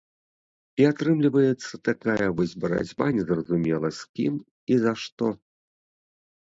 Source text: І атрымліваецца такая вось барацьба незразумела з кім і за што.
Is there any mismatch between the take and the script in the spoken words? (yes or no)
no